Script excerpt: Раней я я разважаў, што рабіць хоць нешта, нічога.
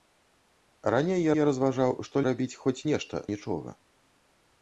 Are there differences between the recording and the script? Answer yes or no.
no